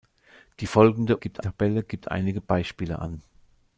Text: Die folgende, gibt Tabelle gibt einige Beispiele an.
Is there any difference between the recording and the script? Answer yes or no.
no